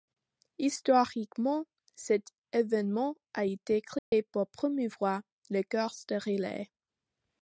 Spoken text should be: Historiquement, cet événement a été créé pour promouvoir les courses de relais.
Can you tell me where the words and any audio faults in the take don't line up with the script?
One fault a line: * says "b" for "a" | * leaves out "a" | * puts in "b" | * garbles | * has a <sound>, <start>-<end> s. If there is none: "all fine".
* has a dropout, 4.0-4.1 s